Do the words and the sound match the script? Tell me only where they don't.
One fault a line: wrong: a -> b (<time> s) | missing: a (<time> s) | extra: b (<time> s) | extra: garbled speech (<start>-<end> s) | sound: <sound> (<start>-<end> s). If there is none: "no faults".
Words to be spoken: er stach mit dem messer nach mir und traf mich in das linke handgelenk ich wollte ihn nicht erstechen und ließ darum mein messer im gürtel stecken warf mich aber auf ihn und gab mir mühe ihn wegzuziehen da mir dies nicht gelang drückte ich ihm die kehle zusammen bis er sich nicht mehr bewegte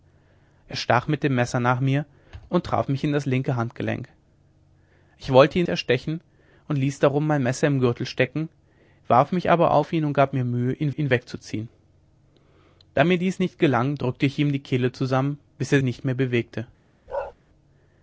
missing: nicht (5.7 s)
extra: ihn (10.9 s)
missing: sich (15.8 s)
sound: bark (17.1-17.3 s)